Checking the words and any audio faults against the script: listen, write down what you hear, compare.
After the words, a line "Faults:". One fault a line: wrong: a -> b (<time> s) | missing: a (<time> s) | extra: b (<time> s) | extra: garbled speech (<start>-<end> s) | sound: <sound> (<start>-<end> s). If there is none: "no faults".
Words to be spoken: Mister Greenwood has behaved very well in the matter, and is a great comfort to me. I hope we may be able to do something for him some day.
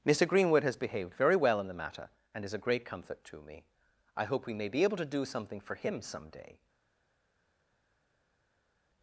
Mister Greenwood has behaved very well in the matter, and is a great comfort to me. I hope we may be able to do something for him some day.
Faults:
no faults